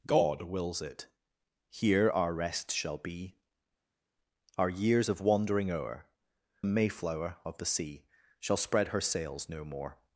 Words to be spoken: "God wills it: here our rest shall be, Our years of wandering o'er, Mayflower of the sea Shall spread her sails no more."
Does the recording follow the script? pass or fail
pass